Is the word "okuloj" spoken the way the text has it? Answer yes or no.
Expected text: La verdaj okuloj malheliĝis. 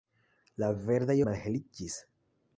no